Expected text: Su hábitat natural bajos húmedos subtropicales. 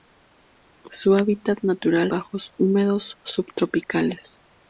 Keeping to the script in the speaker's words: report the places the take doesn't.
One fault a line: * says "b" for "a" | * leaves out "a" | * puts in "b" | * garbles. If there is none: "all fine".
all fine